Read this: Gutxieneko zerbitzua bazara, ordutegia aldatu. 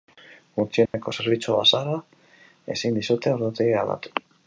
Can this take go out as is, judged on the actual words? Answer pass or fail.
fail